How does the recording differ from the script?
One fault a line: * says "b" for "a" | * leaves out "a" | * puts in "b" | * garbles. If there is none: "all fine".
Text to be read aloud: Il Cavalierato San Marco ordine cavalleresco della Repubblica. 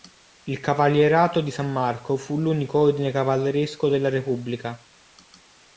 * puts in "di"
* puts in "fu l'unico"